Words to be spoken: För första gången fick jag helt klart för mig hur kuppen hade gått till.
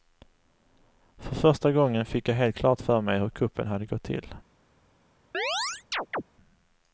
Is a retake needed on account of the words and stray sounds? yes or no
yes